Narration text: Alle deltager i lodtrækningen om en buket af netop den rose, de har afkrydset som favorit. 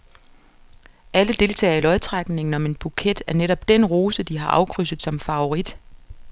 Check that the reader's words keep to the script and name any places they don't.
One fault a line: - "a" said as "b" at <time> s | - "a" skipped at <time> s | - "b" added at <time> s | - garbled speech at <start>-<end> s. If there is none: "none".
none